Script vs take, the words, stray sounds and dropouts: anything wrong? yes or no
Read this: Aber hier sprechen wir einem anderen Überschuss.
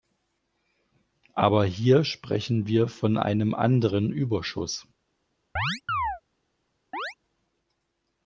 yes